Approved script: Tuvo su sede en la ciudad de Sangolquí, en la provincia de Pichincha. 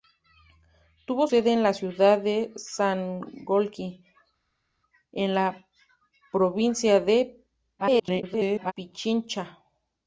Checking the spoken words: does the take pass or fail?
fail